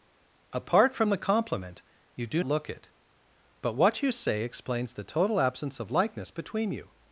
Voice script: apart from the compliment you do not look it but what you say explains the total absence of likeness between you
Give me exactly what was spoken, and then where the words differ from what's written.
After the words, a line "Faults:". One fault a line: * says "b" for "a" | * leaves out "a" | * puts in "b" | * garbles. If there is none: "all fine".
apart from the compliment you do look it but what you say explains the total absence of likeness between you
Faults:
* leaves out "not"